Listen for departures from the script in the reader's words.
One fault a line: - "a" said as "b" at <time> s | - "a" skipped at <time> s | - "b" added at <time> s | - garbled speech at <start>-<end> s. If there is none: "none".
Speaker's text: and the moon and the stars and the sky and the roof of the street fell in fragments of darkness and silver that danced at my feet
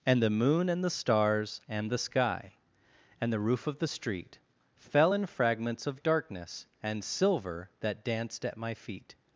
none